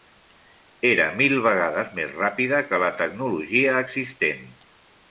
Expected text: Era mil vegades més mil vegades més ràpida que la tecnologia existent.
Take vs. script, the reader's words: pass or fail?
fail